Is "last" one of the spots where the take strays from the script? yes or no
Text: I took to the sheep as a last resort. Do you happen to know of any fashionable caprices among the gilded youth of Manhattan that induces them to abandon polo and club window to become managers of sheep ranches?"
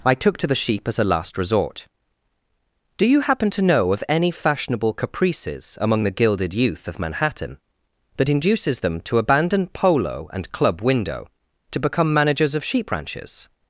no